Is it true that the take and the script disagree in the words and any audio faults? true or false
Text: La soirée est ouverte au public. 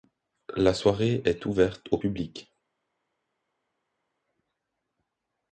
false